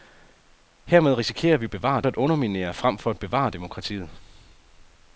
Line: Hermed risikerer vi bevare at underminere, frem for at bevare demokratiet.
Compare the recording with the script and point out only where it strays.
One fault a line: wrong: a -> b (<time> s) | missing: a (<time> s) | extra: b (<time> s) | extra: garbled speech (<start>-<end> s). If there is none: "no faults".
no faults